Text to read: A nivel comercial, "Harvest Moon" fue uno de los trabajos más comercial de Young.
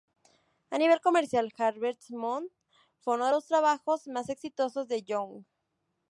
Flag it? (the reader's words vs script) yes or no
yes